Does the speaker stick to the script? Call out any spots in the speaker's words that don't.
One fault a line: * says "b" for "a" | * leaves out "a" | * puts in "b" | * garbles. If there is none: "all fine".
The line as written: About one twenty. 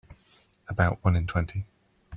* puts in "in"